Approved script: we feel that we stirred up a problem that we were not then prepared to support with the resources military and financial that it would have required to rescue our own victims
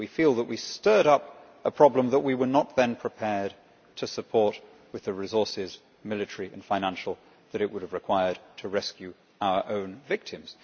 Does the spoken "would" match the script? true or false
true